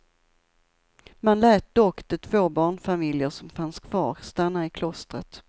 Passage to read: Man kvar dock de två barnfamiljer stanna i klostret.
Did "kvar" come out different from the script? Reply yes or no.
yes